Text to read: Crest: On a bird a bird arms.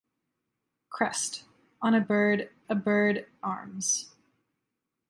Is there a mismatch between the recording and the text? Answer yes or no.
no